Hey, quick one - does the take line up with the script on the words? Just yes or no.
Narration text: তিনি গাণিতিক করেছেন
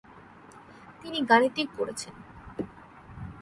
yes